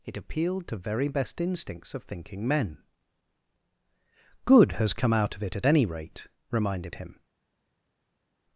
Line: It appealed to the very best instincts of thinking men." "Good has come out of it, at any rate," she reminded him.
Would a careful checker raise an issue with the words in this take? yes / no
yes